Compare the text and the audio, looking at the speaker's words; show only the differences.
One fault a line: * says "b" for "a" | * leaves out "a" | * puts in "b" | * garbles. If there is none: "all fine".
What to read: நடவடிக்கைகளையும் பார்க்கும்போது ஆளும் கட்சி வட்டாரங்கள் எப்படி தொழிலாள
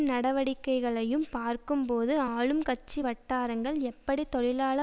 all fine